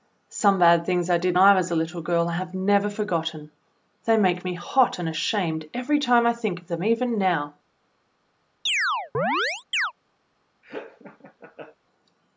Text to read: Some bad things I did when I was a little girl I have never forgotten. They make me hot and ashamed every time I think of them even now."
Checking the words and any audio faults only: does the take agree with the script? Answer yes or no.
no